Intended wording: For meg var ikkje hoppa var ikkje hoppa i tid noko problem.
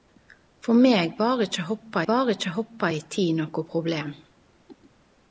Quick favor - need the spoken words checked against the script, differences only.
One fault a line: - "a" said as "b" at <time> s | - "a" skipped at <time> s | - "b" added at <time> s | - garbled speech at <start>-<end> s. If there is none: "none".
none